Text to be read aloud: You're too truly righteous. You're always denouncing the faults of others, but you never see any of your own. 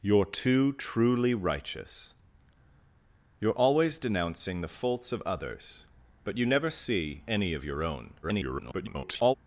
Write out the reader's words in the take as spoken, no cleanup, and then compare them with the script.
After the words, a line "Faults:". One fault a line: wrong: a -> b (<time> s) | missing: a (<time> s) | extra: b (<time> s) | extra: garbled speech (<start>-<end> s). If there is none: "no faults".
You're too truly righteous. You're always denouncing the faults of others, but you never see any of your own. [garbled]
Faults:
extra: garbled speech (8.2-9.3 s)